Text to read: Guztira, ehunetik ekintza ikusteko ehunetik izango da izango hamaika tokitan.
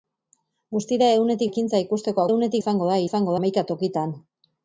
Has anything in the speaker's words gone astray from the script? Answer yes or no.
no